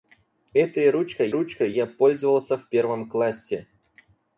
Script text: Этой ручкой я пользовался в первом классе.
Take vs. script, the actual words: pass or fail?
fail